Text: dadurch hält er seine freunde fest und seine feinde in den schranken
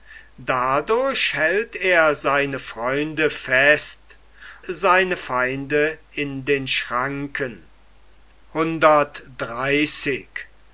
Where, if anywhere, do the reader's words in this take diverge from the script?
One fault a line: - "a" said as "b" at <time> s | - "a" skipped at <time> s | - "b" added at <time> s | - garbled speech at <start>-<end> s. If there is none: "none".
- "und" skipped at 4.2 s